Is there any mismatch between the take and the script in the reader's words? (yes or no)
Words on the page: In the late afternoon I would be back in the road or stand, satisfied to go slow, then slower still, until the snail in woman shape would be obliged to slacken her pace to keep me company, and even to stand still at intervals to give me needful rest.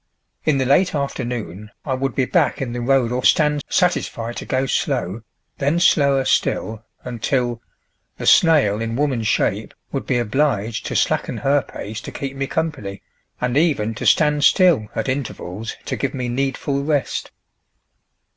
no